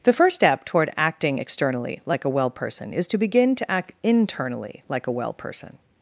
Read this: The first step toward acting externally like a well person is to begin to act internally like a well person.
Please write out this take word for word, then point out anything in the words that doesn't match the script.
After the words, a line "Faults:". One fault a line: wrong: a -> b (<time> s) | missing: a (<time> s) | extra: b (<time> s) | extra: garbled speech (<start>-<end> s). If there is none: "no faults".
The first step toward acting externally like a well person is to begin to act internally like a well person.
Faults:
no faults